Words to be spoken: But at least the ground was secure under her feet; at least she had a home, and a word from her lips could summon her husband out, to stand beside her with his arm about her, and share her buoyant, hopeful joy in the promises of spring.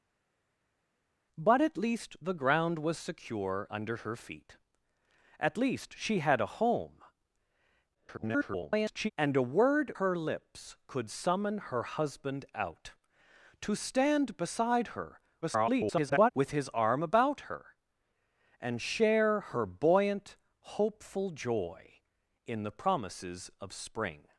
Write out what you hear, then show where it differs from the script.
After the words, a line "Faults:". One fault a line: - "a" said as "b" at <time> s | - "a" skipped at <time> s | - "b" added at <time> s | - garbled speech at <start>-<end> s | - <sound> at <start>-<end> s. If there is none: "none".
But at least the ground was secure under her feet; at least she had a home, [garbled] and a word her lips could summon her husband out, to stand beside her [garbled] with his arm about her, and share her buoyant, hopeful joy in the promises of spring.
Faults:
- garbled speech at 7.9-9.1 s
- "from" skipped at 9.9 s
- garbled speech at 15.4-16.3 s